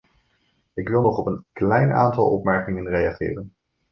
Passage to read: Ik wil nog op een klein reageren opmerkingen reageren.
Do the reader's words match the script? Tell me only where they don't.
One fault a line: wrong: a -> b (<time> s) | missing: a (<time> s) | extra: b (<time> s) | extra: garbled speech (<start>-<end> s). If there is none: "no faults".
wrong: reageren -> aantal (1.9 s)